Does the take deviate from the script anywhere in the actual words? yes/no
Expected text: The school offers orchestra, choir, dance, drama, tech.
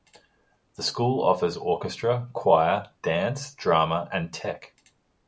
yes